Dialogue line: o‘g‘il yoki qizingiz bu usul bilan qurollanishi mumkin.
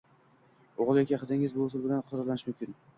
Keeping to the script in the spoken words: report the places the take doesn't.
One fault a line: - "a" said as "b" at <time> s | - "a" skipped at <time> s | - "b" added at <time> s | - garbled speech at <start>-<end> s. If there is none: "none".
none